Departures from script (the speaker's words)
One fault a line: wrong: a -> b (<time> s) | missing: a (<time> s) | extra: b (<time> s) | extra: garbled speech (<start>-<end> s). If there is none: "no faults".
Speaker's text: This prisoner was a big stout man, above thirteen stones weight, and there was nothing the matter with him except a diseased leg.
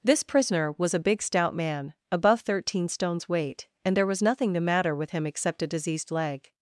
no faults